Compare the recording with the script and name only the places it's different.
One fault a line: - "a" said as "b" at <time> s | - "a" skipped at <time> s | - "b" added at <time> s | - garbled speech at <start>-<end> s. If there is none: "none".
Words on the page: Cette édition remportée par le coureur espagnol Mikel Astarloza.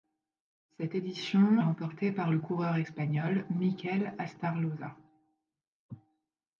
none